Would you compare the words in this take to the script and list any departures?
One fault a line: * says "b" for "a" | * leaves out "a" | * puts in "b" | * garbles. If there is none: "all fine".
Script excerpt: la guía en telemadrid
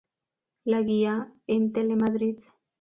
all fine